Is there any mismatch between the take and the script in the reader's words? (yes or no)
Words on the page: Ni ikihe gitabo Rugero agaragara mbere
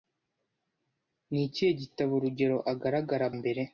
no